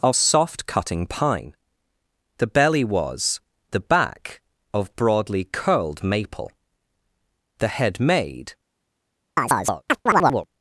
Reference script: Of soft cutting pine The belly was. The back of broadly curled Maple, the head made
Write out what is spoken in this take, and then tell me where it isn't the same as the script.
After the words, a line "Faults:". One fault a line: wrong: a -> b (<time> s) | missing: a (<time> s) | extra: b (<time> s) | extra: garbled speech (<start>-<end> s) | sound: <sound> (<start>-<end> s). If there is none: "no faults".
Of soft cutting pine The belly was. The back of broadly curled Maple, the head made
Faults:
sound: chirp (9.4-10.5 s)